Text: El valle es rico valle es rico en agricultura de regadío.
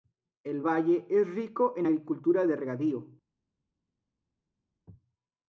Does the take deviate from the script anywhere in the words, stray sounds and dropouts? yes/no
yes